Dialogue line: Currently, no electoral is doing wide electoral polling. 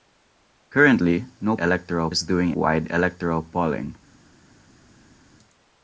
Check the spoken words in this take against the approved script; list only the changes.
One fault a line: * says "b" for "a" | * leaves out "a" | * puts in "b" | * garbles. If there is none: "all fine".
all fine